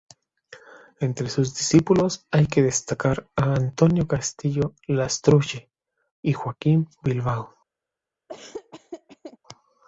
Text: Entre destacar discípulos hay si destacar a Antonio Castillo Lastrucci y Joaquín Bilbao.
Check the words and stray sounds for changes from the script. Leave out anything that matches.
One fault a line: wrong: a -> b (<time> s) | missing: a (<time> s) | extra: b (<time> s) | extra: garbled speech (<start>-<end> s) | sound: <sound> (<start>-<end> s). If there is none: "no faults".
wrong: destacar -> sus (1.3 s)
wrong: si -> que (2.5 s)
sound: laugh (8.3-9.4 s)